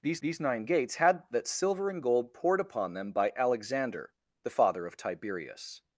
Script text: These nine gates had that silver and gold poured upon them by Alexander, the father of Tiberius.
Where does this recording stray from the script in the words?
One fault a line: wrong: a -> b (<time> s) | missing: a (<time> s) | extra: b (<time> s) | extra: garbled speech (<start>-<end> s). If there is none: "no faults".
extra: these (0.2 s)